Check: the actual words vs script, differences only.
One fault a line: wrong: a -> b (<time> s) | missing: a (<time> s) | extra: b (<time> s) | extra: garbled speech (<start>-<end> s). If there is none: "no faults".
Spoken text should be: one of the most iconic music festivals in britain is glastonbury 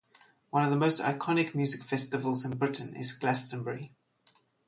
no faults